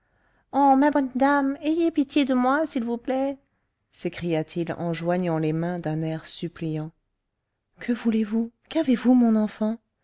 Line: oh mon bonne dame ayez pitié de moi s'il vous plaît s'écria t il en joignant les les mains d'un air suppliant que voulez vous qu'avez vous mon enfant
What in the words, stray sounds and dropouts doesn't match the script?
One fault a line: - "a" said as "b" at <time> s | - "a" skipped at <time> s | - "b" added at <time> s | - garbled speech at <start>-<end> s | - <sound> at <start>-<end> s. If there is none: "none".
- "mon" said as "ma" at 0.8 s
- "les" skipped at 5.5 s